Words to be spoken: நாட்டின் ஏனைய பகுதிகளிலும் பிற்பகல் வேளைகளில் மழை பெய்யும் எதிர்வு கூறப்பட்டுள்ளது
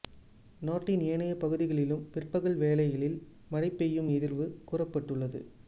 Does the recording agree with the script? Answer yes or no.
yes